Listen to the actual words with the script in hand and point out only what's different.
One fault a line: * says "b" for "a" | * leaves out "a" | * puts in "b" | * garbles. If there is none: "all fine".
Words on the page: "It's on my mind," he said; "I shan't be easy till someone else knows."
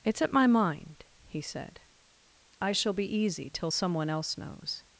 * says "at" for "on"
* says "shall" for "shan't"